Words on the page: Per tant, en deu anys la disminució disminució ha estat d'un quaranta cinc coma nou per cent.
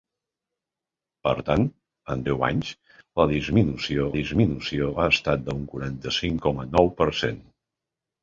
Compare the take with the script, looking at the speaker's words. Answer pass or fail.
pass